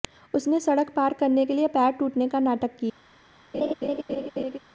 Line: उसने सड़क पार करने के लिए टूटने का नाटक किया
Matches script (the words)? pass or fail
fail